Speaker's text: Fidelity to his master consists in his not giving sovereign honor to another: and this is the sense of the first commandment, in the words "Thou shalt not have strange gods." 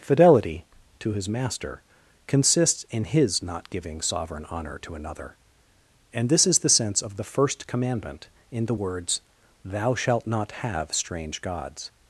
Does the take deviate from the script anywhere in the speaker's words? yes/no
no